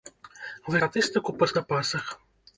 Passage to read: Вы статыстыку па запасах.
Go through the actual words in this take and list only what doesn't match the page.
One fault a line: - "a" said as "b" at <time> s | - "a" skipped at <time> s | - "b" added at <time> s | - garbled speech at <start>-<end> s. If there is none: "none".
none